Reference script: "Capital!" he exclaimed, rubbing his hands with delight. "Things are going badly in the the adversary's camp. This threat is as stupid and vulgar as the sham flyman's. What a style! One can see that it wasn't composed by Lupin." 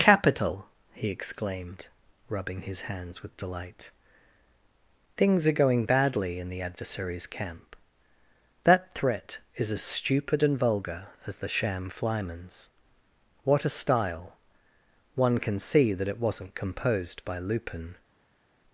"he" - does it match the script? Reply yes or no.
yes